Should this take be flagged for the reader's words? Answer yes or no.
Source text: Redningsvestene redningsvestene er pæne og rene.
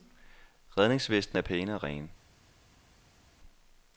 yes